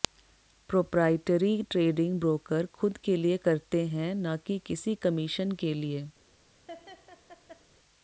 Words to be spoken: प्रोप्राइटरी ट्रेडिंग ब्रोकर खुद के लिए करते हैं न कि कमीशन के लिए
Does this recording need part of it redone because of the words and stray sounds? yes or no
yes